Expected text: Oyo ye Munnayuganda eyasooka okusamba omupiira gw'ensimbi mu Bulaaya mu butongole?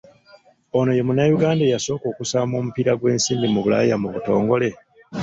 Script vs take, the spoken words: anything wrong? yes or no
yes